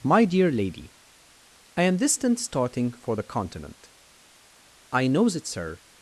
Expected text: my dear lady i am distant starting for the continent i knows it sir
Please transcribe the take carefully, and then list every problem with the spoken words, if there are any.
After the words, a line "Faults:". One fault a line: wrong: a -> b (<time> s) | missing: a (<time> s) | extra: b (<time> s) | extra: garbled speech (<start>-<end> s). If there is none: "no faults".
my dear lady i am distant starting for the continent i knows it sir
Faults:
no faults